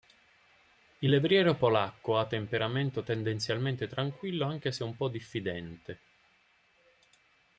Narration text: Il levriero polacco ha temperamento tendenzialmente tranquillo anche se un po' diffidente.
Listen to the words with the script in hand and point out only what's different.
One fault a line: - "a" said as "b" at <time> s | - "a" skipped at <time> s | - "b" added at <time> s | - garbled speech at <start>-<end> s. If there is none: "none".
none